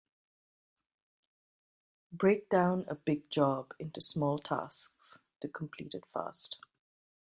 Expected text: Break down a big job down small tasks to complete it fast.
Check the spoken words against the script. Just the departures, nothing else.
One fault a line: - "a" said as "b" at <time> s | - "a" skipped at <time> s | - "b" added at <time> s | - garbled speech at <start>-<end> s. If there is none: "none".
- "down" said as "into" at 3.8 s